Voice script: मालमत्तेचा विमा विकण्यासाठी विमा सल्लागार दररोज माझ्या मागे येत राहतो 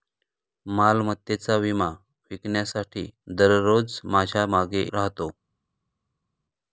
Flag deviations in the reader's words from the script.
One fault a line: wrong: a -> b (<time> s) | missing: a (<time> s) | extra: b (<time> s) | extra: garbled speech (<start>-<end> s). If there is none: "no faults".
missing: विमा सल्लागार (3.0 s)
missing: येत (4.8 s)